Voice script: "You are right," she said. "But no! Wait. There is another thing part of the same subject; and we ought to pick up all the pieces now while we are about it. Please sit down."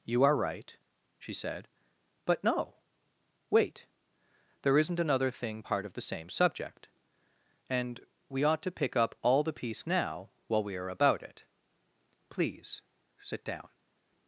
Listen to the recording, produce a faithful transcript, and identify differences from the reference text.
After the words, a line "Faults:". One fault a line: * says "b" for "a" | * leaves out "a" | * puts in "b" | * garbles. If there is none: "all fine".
"You are right," she said. "But no! Wait. There isn't another thing part of the same subject; and we ought to pick up all the piece now while we are about it. Please sit down."
Faults:
* says "isn't" for "is"
* says "piece" for "pieces"